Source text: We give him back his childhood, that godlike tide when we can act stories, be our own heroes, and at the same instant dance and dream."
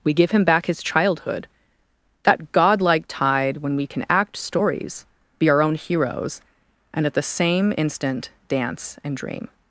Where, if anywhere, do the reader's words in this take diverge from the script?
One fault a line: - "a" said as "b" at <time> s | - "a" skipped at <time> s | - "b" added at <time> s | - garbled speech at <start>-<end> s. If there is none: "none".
none